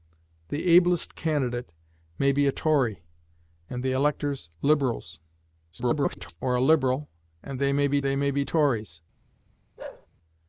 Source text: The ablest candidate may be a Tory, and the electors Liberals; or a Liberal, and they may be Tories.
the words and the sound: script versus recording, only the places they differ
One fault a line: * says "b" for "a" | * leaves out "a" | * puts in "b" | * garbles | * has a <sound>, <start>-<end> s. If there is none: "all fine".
* garbles
* puts in "they may be"
* has a bark, 9.8-10.1 s